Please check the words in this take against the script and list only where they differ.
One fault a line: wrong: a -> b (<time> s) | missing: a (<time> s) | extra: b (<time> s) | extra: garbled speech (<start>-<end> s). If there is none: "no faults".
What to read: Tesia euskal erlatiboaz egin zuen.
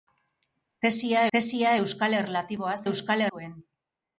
extra: tesia (1.4 s)
wrong: egin -> euskal (2.9 s)